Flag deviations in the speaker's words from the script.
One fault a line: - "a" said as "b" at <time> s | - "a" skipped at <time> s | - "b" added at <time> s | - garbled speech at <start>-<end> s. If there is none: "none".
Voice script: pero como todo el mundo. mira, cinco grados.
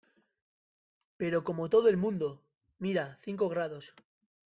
none